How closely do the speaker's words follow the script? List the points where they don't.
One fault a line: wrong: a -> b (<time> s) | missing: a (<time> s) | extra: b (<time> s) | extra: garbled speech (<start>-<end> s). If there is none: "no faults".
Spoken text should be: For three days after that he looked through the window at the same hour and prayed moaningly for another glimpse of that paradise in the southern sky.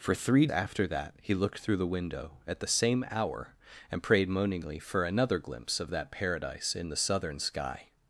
missing: days (0.5 s)